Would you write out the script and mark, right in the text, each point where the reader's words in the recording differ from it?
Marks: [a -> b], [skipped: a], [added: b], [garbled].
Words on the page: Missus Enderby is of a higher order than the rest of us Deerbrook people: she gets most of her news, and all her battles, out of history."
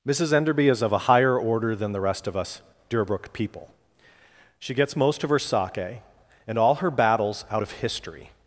Missus Enderby is of a higher order than the rest of us Deerbrook people: she gets most of her [news, -> sake] and all her battles, out of history."